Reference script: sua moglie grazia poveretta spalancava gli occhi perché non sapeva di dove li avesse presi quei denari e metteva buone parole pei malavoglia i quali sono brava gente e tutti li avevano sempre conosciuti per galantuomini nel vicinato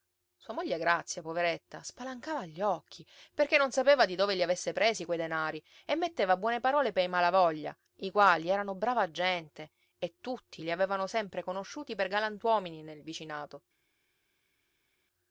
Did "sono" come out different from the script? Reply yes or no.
yes